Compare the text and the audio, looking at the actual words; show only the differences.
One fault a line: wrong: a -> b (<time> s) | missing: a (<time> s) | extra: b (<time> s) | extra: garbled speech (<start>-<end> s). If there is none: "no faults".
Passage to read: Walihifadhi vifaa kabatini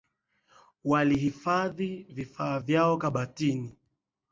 extra: vyao (2.6 s)